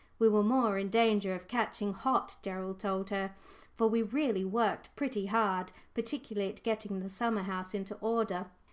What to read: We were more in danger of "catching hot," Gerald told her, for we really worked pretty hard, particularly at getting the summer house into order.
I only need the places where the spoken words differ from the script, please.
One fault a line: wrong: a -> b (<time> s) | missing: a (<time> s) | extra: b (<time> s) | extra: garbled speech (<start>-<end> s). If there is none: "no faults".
no faults